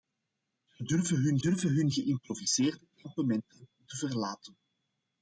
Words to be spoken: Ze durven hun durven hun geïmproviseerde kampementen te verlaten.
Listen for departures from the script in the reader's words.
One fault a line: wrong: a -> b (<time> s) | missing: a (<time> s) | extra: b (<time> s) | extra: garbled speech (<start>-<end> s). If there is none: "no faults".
no faults